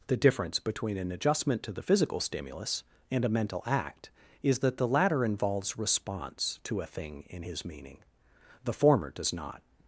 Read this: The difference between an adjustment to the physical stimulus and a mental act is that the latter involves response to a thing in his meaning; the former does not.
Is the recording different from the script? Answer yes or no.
no